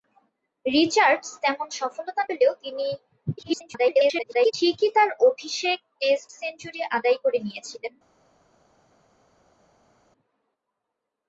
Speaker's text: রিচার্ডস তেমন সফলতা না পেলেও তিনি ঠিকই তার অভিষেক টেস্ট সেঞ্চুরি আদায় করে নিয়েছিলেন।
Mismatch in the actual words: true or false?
true